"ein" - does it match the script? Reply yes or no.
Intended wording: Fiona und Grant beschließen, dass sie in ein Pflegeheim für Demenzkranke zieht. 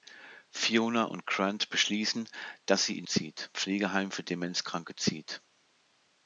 no